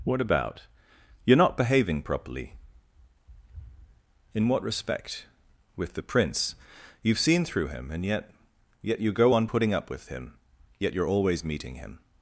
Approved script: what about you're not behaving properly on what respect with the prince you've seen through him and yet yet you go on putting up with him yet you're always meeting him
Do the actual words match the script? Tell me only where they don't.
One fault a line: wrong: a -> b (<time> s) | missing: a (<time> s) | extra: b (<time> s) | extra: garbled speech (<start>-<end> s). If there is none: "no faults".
wrong: on -> in (4.3 s)